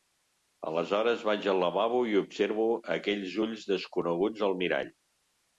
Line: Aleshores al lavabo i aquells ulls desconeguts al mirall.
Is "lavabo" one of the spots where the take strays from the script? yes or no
no